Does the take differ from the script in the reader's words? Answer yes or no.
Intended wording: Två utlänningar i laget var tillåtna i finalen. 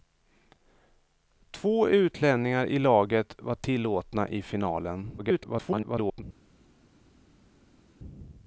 yes